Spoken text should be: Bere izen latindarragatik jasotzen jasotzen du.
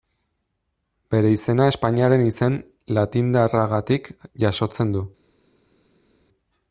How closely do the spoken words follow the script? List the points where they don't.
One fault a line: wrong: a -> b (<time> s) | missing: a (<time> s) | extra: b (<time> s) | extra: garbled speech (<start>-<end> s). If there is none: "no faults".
extra: izena Espainiaren (1.3 s)
missing: jasotzen (5.0 s)